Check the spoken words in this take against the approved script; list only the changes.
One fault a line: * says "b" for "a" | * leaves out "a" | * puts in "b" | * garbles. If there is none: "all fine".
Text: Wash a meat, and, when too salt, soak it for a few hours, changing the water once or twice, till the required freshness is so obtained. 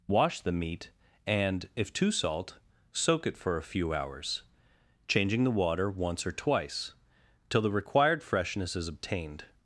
* says "the" for "a"
* says "if" for "when"
* leaves out "so"